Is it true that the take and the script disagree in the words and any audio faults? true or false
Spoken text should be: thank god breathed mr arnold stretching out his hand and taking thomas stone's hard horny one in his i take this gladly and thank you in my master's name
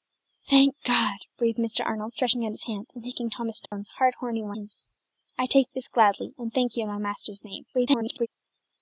true